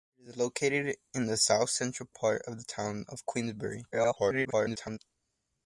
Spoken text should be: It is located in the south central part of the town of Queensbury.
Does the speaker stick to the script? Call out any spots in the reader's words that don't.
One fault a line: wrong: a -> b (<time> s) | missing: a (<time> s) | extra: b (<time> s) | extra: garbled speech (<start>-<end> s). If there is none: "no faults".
extra: garbled speech (3.9-5.0 s)